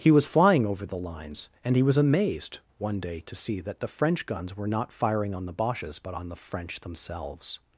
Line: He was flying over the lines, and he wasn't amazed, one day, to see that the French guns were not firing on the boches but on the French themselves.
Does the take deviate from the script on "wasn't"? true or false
true